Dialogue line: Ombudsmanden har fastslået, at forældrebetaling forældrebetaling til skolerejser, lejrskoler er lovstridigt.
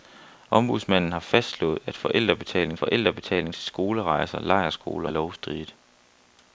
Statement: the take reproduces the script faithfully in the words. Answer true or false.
true